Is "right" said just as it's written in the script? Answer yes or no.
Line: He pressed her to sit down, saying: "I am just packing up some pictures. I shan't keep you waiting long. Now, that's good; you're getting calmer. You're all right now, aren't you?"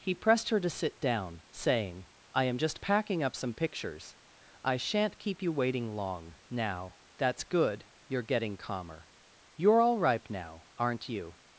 no